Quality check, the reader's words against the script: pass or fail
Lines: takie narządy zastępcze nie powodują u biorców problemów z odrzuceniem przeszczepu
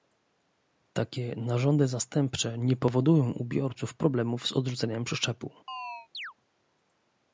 pass